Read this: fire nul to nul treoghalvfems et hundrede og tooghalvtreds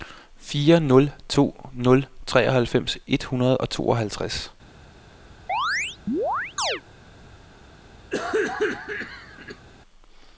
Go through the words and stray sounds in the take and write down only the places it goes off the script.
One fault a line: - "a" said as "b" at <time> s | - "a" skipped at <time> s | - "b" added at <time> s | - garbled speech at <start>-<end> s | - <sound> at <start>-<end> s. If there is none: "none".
- chirp at 5.5-6.8 s
- cough at 8.1-9.7 s